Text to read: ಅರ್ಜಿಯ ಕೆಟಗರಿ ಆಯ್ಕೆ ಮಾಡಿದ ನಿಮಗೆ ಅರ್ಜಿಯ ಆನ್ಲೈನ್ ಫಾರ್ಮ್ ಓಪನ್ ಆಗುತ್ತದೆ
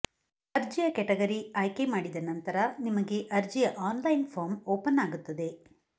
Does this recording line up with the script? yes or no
no